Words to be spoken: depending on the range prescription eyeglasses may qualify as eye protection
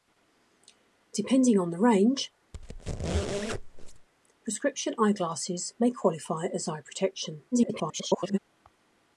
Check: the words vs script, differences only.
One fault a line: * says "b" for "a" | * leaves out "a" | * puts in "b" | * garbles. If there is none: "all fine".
* garbles